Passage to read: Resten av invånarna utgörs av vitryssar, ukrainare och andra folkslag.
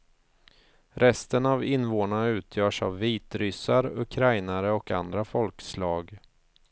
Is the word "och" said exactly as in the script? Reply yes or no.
yes